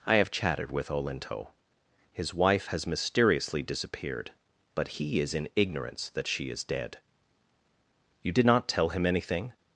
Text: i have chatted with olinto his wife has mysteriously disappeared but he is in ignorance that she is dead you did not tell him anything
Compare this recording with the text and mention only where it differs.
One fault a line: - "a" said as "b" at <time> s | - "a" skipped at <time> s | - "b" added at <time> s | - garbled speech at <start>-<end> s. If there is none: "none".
none